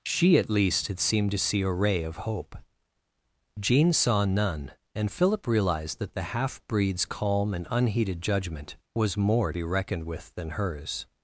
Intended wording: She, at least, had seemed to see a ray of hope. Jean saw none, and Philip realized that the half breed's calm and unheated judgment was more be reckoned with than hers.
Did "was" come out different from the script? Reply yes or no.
no